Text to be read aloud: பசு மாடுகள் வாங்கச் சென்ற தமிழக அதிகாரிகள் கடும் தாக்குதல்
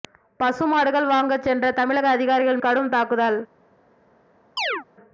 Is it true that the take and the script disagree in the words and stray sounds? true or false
true